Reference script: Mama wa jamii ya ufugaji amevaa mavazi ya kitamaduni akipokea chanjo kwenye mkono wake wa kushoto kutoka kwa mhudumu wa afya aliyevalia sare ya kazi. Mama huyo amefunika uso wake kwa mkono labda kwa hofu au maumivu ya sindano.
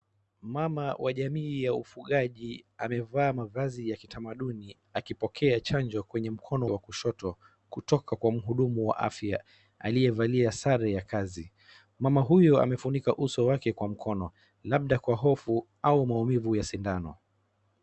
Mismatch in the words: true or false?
true